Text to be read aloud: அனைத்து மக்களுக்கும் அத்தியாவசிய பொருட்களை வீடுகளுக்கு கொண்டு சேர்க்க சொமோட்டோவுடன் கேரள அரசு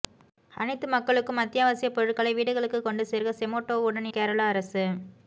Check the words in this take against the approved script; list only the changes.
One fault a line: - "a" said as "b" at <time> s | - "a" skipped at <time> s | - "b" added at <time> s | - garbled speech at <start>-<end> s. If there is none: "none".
none